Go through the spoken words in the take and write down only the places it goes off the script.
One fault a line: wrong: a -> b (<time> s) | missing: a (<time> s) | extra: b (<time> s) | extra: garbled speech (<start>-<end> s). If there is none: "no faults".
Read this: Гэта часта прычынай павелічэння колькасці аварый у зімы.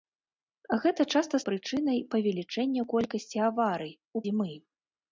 no faults